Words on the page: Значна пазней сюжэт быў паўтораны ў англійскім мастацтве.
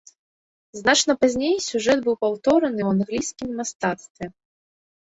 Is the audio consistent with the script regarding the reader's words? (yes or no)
yes